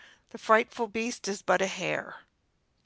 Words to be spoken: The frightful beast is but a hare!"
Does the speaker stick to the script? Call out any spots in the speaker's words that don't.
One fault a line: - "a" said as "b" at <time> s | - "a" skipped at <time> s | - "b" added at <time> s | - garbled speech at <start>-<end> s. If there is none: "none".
none